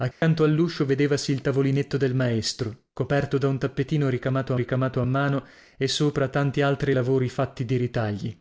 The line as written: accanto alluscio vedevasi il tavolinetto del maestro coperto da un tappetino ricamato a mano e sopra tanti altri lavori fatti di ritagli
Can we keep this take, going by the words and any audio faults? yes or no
no